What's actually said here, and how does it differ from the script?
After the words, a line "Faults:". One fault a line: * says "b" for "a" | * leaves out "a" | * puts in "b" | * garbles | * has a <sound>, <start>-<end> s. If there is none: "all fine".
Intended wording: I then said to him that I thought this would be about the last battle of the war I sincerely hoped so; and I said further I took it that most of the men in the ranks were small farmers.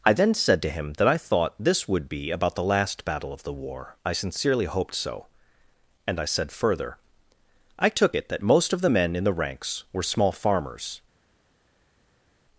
I then said to him that I thought this would be about the last battle of the war I sincerely hoped so; and I said further I took it that most of the men in the ranks were small farmers.
Faults:
all fine